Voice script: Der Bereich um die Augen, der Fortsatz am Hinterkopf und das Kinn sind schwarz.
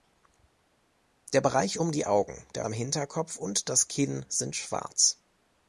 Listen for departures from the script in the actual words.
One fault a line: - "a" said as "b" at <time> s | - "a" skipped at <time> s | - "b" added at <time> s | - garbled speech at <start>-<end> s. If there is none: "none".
- "Fortsatz" skipped at 2.6 s